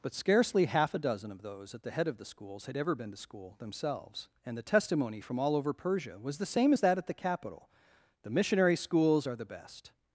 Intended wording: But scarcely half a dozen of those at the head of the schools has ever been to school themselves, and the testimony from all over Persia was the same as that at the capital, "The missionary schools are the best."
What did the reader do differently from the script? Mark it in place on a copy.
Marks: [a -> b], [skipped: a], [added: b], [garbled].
But scarcely half a dozen of those at the head of the schools [has -> had] ever been to school themselves, and the testimony from all over Persia was the same as that at the capital, "The missionary schools are the best."